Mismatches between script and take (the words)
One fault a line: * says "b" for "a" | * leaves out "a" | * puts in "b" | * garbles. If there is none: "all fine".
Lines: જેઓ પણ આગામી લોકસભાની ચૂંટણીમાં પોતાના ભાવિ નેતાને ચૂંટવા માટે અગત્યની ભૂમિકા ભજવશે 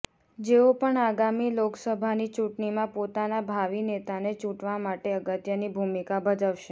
all fine